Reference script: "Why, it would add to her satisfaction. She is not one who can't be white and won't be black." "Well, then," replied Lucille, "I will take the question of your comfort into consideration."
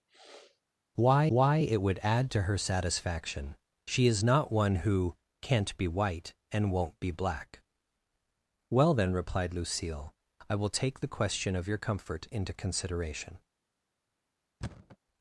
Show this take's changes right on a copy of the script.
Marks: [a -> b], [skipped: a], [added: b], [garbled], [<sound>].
[sniff] "Why, [added: why] it would add to her satisfaction. She is not one who can't be white and won't be black." "Well, then," replied Lucille, "I will take the question of your comfort into consideration." [thud]